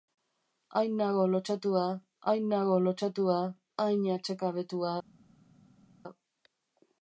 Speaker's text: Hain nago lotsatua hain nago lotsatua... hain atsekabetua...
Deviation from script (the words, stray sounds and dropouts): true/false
false